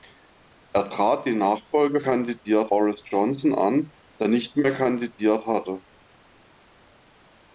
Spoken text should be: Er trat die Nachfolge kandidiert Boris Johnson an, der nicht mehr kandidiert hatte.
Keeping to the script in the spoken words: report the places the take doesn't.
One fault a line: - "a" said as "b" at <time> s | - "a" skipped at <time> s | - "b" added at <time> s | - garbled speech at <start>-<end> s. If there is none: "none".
none